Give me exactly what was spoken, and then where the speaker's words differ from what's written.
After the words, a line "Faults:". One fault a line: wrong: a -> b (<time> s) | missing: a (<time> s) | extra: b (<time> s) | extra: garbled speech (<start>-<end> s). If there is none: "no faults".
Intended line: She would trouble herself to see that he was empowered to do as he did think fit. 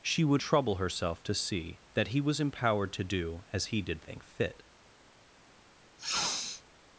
She would trouble herself to see that he was empowered to do as he did think fit.
Faults:
no faults